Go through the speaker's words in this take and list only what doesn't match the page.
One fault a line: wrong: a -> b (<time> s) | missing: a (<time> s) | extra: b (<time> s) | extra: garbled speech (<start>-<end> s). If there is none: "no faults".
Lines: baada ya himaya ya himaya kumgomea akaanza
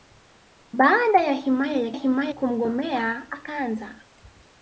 no faults